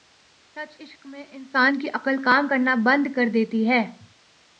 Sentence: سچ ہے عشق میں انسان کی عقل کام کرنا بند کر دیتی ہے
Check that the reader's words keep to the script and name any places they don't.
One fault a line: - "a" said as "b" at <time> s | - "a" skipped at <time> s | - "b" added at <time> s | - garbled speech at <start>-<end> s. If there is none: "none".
- "ہے" skipped at 0.8 s